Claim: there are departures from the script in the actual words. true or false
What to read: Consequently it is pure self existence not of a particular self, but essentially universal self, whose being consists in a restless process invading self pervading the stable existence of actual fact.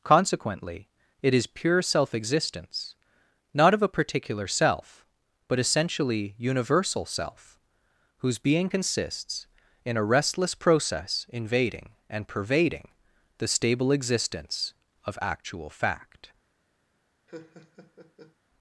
true